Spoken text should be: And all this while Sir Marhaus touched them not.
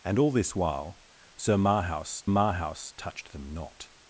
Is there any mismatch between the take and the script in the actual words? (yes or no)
yes